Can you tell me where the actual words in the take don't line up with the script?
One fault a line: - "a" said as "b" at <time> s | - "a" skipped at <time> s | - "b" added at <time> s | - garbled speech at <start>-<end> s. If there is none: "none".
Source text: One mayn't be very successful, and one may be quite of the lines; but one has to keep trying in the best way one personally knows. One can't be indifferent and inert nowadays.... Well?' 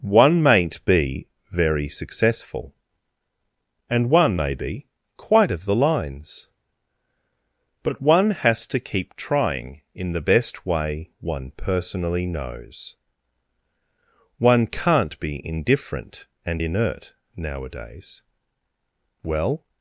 none